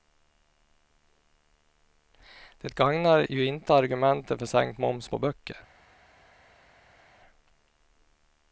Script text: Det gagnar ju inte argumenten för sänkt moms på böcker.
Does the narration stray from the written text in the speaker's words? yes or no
no